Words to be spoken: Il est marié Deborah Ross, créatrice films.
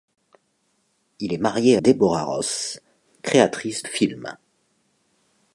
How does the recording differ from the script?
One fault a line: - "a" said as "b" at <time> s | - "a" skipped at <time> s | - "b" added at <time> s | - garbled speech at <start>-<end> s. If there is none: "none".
none